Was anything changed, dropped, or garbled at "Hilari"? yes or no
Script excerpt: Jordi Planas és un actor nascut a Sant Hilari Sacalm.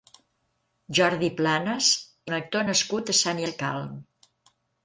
yes